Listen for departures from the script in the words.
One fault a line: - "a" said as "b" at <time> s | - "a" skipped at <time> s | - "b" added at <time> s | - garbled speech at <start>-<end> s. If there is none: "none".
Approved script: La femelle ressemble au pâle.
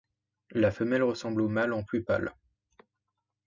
- "mâle en plus" added at 1.5 s